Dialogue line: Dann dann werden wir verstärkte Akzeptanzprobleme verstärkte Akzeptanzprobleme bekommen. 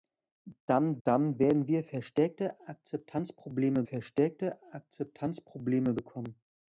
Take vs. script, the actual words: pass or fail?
pass